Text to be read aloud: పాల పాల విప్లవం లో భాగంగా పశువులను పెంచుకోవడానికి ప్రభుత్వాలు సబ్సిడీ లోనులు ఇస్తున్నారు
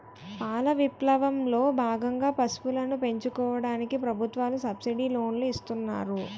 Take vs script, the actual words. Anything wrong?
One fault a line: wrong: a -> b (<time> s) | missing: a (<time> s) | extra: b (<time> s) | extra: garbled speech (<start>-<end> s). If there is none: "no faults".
missing: పాల (0.7 s)